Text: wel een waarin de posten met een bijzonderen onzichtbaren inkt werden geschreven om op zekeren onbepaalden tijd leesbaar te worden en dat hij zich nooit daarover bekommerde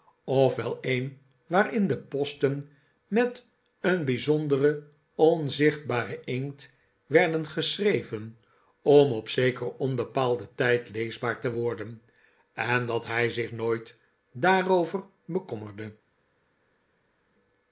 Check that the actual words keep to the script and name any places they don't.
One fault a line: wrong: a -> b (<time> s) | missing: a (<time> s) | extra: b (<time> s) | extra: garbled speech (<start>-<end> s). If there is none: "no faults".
no faults